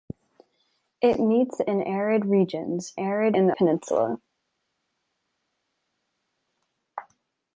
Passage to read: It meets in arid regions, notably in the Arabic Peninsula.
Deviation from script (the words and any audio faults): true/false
true